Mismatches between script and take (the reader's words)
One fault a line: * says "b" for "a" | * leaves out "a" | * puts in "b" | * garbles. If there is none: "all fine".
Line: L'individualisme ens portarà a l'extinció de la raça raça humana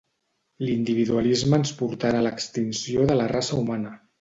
* leaves out "raça"